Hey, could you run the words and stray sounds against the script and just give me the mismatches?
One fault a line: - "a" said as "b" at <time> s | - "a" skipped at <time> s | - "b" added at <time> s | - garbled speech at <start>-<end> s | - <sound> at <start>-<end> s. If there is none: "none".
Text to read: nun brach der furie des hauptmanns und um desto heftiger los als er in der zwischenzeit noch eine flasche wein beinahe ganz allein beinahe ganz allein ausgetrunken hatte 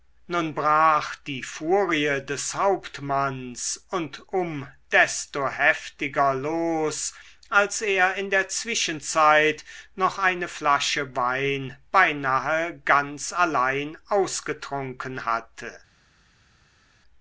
- "der" said as "die" at 1.3 s
- "beinahe ganz allein" skipped at 14.0 s